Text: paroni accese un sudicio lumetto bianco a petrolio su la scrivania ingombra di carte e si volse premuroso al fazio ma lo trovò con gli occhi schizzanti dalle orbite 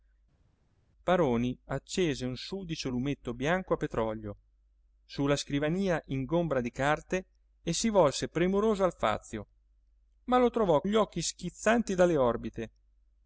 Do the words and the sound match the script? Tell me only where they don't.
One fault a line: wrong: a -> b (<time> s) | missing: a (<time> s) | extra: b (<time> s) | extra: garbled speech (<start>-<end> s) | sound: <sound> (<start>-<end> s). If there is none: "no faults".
missing: con (10.8 s)